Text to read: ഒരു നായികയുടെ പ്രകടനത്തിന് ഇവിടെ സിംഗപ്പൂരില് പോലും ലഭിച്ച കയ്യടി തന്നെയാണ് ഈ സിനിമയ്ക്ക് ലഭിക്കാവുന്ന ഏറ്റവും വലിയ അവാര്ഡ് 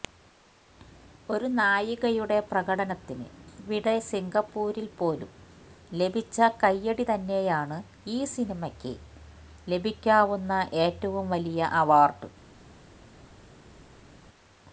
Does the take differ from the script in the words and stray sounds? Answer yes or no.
no